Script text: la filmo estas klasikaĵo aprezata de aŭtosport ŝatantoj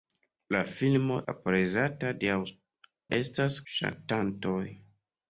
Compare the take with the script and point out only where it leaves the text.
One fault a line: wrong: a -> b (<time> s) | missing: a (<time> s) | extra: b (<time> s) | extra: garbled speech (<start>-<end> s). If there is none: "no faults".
missing: estas klasikaĵo (1.2 s)
wrong: aŭtosport -> estas (3.2 s)